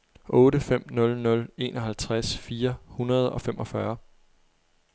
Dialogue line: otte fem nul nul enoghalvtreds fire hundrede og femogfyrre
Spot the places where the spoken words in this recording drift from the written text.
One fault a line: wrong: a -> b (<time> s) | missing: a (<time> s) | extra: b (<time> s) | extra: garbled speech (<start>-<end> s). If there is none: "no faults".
no faults